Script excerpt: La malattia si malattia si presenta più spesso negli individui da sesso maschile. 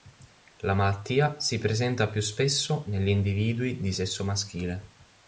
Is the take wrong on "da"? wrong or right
wrong